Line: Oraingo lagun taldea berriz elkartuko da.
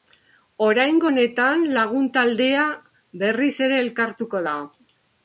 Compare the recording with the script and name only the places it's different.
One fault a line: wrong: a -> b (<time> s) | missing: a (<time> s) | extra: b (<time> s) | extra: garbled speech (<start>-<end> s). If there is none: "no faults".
extra: honetan (1.1 s)
extra: ere (3.7 s)